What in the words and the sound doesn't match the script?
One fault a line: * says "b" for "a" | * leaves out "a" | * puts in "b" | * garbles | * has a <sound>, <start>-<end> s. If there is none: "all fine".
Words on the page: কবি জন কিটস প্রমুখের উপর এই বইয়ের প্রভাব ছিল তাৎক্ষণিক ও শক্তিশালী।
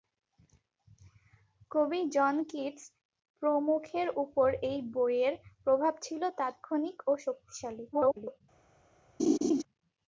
* garbles
* has a laugh, 9.2-9.6 s